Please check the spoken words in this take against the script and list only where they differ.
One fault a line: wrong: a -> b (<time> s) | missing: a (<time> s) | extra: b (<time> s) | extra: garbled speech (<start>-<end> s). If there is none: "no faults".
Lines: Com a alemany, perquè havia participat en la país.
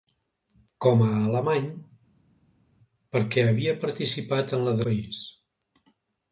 no faults